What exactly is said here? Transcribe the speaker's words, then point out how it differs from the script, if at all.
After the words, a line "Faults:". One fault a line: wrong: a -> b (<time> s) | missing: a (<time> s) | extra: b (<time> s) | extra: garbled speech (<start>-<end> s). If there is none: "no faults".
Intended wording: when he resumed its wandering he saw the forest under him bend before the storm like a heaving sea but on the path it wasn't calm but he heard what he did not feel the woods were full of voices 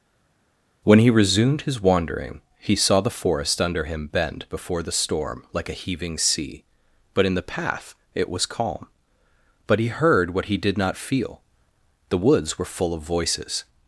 when he resumed his wandering he saw the forest under him bend before the storm like a heaving sea but in the path it was calm but he heard what he did not feel the woods were full of voices
Faults:
wrong: its -> his (1.6 s)
wrong: on -> in (7.3 s)
wrong: wasn't -> was (8.3 s)